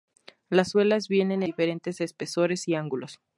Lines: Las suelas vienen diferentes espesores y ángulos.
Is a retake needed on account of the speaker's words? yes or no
no